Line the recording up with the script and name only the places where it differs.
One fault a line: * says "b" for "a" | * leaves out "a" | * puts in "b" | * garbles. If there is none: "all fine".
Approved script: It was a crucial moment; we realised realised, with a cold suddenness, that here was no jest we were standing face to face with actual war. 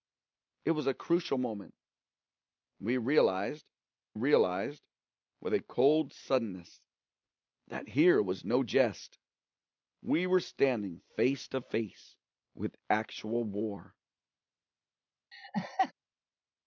all fine